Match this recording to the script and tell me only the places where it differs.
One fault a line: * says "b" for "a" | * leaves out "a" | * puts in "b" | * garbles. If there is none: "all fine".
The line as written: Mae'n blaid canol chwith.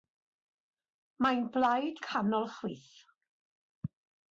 all fine